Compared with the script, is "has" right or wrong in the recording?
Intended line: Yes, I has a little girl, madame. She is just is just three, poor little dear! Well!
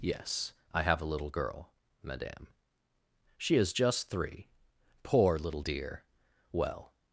wrong